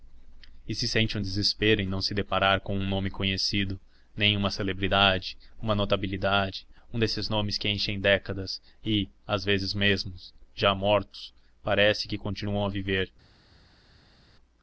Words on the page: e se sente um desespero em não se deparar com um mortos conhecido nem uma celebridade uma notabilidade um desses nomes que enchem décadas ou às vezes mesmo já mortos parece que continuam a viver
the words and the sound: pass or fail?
fail